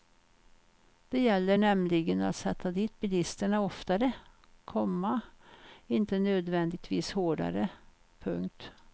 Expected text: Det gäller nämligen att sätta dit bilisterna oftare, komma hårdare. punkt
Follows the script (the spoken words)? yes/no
no